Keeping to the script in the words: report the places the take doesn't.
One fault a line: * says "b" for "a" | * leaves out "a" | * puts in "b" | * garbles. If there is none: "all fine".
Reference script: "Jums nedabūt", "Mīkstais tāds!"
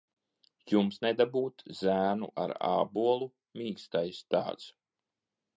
* puts in "Zēnu ar ābolu"